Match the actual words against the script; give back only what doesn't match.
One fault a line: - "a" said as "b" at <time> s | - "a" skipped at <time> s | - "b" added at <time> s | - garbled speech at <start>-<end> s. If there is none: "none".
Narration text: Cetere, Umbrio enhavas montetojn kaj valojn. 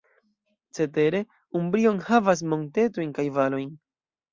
none